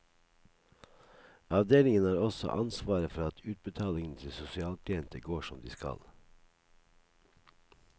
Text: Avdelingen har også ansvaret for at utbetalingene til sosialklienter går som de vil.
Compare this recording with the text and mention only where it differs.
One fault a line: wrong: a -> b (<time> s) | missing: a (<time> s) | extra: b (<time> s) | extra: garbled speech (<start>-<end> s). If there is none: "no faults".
wrong: vil -> skal (5.7 s)